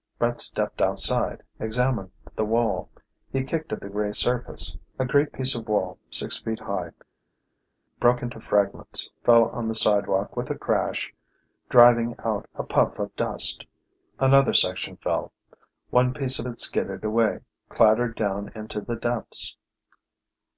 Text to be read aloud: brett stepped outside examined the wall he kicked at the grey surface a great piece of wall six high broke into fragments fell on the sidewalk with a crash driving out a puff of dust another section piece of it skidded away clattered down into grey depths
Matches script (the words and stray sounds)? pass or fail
fail